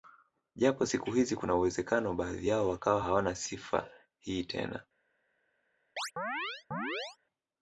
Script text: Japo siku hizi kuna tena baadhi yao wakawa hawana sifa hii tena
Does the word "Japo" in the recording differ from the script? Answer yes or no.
no